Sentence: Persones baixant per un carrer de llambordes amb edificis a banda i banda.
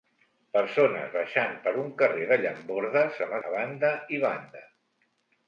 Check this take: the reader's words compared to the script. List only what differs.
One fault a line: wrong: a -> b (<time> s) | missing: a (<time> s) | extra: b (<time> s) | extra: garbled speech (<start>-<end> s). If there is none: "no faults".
missing: edificis (3.4 s)